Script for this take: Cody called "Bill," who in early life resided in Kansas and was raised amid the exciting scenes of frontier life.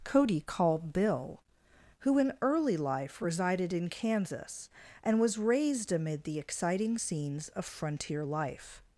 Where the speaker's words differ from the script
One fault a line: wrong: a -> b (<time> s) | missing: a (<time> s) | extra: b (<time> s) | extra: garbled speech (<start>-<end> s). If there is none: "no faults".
no faults